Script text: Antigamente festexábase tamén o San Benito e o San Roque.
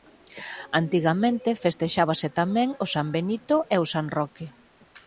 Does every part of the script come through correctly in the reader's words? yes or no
yes